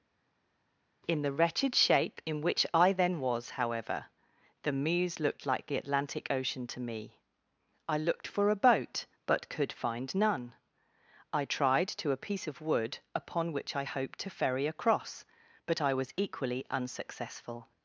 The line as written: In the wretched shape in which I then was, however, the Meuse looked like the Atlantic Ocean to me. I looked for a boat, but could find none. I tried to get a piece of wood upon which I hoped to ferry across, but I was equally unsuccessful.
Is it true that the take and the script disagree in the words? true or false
true